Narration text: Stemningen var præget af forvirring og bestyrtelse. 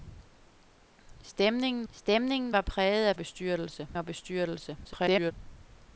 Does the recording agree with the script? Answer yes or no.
no